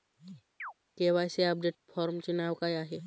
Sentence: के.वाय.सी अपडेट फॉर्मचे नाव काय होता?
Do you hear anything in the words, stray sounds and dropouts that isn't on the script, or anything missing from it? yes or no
yes